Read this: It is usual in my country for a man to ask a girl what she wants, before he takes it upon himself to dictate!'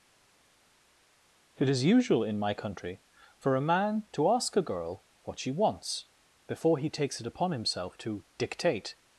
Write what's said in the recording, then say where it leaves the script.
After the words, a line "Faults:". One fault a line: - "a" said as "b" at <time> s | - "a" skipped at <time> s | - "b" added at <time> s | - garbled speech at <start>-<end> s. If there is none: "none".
It is usual in my country for a man to ask a girl what she wants, before he takes it upon himself to dictate!'
Faults:
none